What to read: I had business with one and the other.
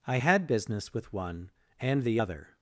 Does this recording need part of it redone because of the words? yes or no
no